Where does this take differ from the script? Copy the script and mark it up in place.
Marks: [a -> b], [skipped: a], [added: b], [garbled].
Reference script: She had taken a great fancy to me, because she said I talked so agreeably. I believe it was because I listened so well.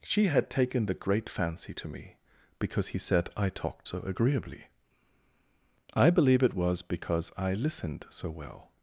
She had taken [a -> the] great fancy to me, because [she -> he] said I talked so agreeably. I believe it was because I listened so well.